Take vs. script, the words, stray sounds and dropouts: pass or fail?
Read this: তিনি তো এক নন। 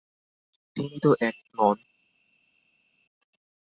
pass